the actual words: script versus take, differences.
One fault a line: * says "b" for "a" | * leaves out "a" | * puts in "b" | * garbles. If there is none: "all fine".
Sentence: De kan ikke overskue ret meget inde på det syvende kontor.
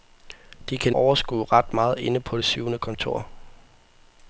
* leaves out "ikke"